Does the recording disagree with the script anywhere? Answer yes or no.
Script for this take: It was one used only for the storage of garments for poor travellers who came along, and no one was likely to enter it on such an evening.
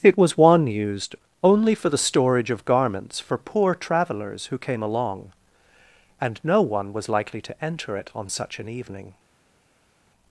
no